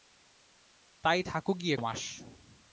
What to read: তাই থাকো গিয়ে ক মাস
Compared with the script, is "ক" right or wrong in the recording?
wrong